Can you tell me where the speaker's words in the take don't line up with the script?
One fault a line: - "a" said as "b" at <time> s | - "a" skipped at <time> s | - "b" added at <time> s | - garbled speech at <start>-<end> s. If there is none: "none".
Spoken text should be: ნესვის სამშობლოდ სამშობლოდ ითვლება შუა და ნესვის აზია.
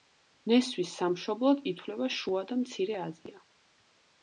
- "სამშობლოდ" skipped at 1.6 s
- "ნესვის" said as "მცირე" at 2.6 s